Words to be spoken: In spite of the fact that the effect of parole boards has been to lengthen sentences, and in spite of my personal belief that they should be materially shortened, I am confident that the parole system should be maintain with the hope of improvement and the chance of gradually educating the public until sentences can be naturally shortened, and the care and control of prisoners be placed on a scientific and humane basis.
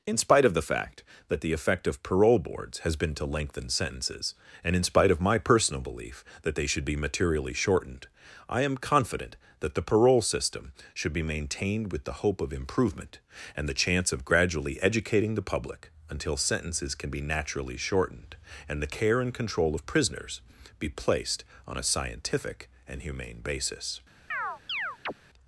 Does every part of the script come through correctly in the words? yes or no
no